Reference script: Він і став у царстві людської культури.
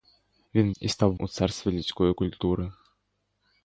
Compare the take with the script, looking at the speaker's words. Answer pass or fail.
pass